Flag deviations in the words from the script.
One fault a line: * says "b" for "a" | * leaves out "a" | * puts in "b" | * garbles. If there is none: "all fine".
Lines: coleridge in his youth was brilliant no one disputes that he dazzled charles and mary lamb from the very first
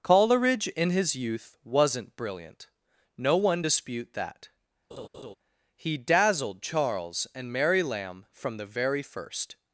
* says "wasn't" for "was"
* says "dispute" for "disputes"